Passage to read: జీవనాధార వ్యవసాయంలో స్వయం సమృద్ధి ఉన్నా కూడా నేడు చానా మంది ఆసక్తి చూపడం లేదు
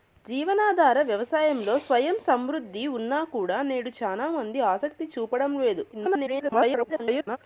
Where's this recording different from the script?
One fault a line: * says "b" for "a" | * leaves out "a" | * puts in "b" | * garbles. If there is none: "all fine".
* garbles